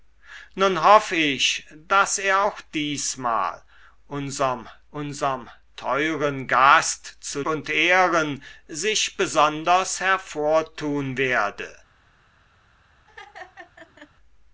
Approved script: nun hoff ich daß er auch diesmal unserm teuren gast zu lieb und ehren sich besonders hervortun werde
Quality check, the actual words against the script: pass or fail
fail